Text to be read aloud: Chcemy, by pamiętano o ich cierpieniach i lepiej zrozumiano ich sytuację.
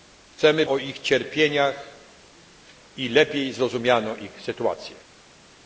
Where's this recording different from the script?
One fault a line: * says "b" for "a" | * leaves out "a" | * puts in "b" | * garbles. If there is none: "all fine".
* leaves out "by pamiętano"